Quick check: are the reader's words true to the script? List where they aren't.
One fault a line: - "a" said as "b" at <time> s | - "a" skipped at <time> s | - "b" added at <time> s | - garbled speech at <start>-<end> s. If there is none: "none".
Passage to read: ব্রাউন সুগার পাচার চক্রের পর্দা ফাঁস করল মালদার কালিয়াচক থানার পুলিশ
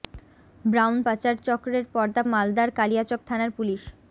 - "সুগার" skipped at 1.0 s
- "ফাঁস করল" skipped at 2.2 s